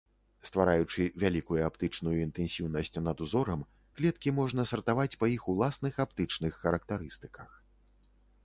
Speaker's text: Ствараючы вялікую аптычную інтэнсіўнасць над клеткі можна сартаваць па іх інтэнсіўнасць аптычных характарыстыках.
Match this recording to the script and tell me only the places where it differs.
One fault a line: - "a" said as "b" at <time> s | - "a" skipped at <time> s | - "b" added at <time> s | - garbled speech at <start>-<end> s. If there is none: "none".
- "узорам" added at 3.2 s
- "інтэнсіўнасць" said as "уласных" at 5.5 s